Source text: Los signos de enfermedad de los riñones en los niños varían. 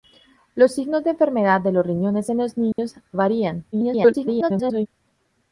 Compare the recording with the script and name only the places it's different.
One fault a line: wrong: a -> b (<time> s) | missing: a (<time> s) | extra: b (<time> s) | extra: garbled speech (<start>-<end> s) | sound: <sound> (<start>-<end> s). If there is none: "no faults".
sound: dropout (2.7-2.8 s)
extra: garbled speech (3.7-4.9 s)